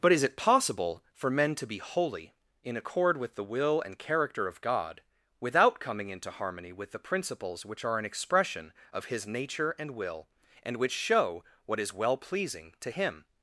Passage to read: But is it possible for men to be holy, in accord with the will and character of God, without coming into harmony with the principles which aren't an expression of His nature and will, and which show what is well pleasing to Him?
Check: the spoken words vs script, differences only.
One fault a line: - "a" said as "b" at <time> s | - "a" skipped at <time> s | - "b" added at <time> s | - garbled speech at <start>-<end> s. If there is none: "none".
- "aren't" said as "are" at 7.8 s